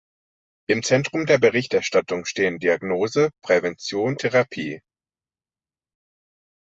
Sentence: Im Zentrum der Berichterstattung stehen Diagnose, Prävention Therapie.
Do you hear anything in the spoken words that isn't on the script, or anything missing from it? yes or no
no